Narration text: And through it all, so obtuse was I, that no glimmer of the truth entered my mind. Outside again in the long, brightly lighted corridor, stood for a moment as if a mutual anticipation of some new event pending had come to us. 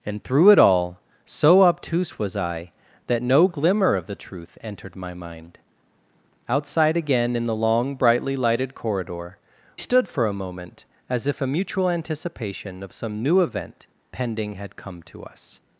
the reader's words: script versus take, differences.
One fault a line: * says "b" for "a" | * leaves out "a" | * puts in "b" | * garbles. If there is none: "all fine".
all fine